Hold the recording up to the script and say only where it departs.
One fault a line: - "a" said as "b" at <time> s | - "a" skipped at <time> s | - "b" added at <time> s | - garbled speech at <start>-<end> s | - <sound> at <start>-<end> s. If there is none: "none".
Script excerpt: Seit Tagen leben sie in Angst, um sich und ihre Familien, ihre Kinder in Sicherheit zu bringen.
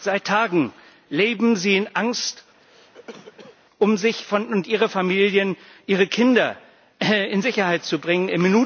- cough at 2.6-3.6 s